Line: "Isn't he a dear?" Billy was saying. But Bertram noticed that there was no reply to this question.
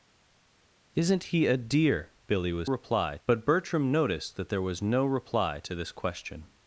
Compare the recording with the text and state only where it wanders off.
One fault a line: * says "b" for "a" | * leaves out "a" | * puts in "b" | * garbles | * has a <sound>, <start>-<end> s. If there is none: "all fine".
* says "reply" for "saying"